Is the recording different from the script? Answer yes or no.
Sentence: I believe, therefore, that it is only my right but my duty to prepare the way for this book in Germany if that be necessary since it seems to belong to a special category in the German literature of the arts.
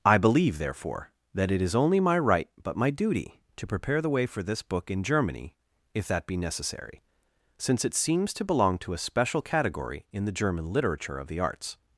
no